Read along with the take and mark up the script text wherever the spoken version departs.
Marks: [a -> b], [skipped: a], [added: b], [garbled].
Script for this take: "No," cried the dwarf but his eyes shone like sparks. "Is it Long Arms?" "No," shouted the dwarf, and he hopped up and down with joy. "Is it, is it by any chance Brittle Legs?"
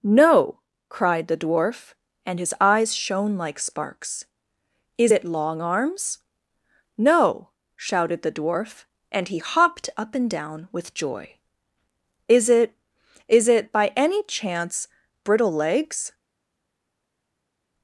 "No," cried the dwarf [but -> and] his eyes shone like sparks. "Is it Long Arms?" "No," shouted the dwarf, and he hopped up and down with joy. "Is it, is it by any chance Brittle Legs?"